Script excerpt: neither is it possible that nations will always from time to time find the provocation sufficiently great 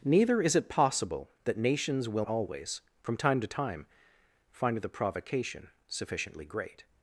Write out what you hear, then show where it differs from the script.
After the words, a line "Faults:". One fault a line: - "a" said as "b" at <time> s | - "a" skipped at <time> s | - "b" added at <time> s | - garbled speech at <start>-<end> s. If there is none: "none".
neither is it possible that nations will always from time to time find the provocation sufficiently great
Faults:
none